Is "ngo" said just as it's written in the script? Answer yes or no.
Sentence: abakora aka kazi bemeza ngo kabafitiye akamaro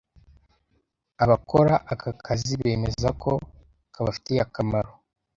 no